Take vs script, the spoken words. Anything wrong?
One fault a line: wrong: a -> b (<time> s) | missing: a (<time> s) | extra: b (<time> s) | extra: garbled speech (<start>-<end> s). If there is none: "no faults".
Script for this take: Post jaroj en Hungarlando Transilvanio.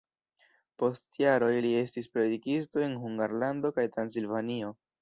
extra: li estis predikisto (1.6 s)
extra: kaj (3.8 s)